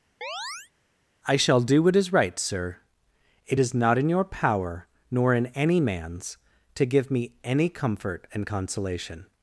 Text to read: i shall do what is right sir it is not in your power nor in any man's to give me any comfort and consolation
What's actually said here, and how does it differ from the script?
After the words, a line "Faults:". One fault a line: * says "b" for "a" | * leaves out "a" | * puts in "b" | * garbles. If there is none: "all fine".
i shall do what is right sir it is not in your power nor in any man's to give me any comfort and consolation
Faults:
all fine